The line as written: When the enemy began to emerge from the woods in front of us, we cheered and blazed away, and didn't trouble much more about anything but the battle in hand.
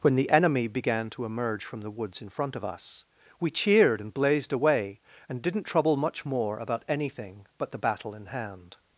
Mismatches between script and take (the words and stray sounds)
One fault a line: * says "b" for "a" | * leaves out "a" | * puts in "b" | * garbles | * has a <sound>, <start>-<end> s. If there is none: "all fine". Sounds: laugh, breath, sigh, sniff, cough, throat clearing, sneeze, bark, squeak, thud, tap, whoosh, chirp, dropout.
all fine